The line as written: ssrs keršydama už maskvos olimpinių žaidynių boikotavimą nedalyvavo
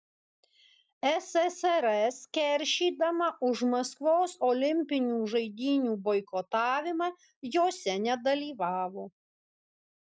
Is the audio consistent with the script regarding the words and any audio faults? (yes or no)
no